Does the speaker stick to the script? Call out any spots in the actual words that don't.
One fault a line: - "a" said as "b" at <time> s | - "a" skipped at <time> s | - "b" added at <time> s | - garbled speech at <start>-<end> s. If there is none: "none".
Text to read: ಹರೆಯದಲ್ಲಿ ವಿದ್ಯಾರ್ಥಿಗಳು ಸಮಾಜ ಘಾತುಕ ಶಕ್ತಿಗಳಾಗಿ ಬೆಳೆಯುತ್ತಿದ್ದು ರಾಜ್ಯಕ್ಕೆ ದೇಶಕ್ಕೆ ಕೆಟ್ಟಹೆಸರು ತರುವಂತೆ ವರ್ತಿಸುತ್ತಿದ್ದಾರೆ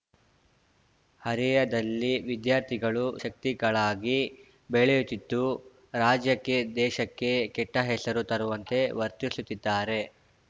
- "ಸಮಾಜ ಘಾತುಕ" skipped at 3.0 s